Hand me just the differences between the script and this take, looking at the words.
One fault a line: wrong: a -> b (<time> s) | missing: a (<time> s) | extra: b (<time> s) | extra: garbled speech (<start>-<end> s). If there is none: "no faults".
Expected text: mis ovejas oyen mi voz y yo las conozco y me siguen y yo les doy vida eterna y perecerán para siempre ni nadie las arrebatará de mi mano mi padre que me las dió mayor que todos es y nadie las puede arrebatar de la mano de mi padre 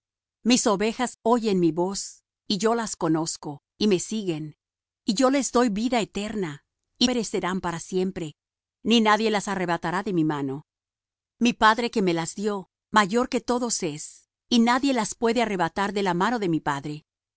no faults